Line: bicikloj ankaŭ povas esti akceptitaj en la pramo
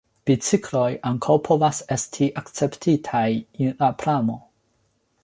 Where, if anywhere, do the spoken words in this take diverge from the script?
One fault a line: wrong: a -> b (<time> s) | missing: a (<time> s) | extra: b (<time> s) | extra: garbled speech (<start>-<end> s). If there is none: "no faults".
no faults